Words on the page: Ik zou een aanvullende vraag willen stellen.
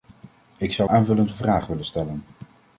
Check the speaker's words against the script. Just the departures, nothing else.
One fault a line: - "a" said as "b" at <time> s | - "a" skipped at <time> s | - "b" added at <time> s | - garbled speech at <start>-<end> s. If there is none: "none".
- "een" skipped at 0.9 s